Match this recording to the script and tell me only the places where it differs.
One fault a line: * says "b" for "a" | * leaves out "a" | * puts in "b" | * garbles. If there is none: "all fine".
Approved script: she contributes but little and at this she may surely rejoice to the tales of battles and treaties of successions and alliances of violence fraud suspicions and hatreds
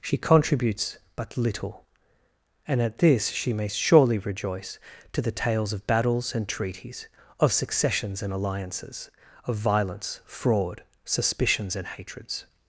all fine